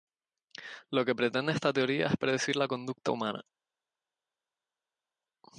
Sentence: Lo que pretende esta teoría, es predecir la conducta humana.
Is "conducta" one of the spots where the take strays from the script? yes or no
no